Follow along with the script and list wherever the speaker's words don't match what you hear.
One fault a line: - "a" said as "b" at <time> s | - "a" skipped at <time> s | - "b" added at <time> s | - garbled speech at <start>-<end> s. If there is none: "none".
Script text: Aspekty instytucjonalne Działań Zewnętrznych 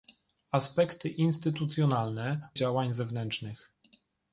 none